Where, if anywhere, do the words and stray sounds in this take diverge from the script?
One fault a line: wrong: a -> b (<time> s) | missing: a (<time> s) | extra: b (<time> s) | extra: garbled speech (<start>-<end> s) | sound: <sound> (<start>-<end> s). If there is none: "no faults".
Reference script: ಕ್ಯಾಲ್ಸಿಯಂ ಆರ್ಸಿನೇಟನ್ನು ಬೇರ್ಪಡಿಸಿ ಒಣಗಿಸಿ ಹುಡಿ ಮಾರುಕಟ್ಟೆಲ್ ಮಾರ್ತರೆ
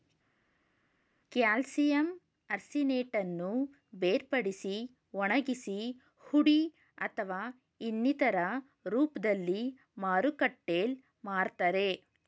extra: ಅಥವಾ ಇನ್ನಿತರ ರೂಪ್ದಲ್ಲಿ (7.0 s)